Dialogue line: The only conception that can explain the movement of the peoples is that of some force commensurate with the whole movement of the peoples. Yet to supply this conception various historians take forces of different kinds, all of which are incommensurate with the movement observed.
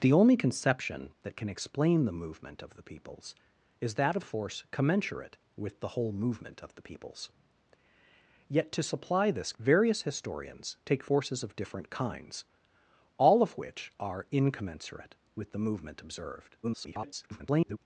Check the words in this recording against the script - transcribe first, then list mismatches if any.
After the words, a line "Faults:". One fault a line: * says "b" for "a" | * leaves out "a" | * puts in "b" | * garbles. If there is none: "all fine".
The only conception that can explain the movement of the peoples is that of force commensurate with the whole movement of the peoples. Yet to supply this various historians take forces of different kinds, all of which are incommensurate with the movement observed. [garbled]
Faults:
* leaves out "some"
* leaves out "conception"
* garbles